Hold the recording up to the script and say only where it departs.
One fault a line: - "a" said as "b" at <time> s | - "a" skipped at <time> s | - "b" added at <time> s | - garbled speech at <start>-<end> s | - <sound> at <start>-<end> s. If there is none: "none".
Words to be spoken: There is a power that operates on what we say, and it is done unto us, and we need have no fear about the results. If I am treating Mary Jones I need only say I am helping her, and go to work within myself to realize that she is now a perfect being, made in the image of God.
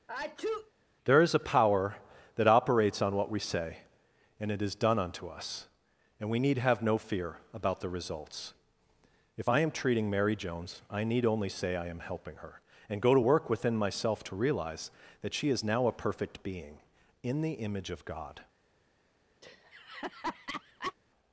- sneeze at 0.1-0.7 s
- "made" skipped at 16.8 s
- laugh at 19.4-20.9 s